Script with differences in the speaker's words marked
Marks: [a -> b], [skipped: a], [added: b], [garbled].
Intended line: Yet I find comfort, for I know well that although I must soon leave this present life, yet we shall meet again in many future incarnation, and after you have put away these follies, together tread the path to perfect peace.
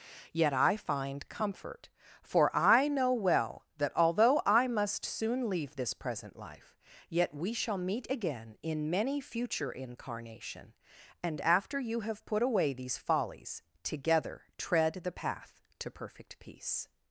Yet I find comfort, for I know well that although I must soon leave this present life, yet we shall meet again in many future incarnation, and after you have put away these follies, together tread the path to perfect peace.